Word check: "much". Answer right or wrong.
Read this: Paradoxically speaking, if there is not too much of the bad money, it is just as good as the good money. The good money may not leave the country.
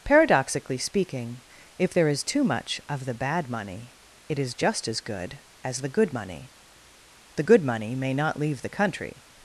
right